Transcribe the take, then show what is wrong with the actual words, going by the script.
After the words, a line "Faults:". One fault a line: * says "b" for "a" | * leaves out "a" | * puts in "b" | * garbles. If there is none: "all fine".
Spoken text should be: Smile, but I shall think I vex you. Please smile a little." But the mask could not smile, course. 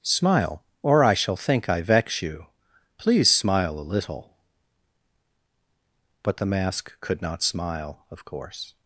Smile, or I shall think I vex you. Please smile a little." But the mask could not smile, of course.
Faults:
* says "or" for "but"
* puts in "of"